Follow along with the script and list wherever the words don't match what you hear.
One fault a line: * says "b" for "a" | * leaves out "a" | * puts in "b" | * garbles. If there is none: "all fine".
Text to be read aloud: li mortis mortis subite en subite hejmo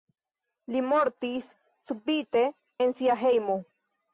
* leaves out "mortis"
* says "sia" for "subite"